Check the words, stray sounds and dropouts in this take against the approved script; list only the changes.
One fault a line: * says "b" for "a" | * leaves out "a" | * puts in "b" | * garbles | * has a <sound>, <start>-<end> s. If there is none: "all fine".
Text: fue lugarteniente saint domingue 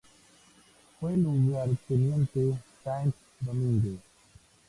all fine